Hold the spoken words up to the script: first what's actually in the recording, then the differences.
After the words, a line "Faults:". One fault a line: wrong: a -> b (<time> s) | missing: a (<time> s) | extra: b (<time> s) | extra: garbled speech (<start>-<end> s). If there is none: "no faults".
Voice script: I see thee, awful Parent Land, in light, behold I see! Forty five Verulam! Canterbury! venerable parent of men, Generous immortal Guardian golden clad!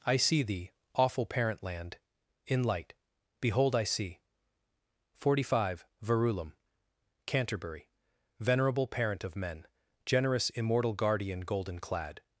I see thee, awful Parent Land, in light, behold I see! Forty five Verulam! Canterbury! venerable parent of men, Generous immortal Guardian golden clad!
Faults:
no faults